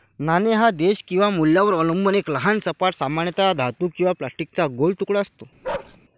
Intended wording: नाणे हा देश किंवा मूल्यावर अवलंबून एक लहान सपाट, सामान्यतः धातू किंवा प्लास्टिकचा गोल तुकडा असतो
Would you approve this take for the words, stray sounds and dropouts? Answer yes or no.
no